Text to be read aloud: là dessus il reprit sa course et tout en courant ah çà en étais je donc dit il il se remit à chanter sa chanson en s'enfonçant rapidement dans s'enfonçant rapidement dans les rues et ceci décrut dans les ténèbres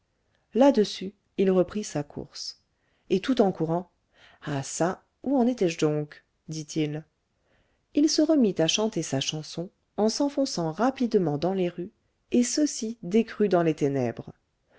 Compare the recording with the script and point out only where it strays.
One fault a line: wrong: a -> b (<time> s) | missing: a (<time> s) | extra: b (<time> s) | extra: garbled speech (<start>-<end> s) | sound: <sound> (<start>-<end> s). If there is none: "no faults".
extra: où (5.2 s)
missing: s'enfonçant rapidement dans (11.5 s)